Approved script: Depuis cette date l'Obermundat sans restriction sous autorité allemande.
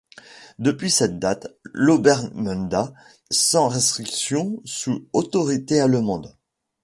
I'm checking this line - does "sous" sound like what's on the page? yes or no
yes